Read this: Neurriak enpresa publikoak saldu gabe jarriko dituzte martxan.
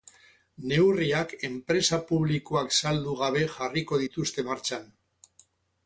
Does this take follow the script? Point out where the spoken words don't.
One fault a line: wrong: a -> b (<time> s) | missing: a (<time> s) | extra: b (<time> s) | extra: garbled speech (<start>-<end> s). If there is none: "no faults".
no faults